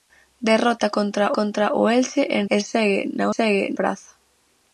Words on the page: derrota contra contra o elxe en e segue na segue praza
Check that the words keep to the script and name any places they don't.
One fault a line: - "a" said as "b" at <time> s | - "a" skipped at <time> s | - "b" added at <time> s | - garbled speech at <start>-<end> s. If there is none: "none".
none